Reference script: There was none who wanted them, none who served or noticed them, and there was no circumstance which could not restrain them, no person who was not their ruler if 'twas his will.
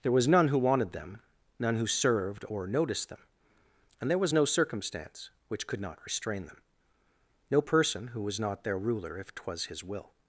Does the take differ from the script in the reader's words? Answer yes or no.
no